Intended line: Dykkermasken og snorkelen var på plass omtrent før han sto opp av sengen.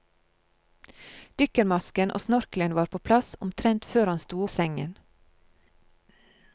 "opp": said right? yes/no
no